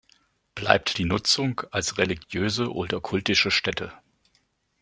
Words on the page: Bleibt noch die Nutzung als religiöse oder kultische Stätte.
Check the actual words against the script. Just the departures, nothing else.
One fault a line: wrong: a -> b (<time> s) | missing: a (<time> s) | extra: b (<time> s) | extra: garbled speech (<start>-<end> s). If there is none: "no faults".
missing: noch (1.0 s)